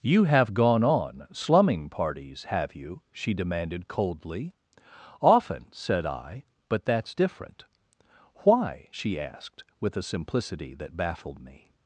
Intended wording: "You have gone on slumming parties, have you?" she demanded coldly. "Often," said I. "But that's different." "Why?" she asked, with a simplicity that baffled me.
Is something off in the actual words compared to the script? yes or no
no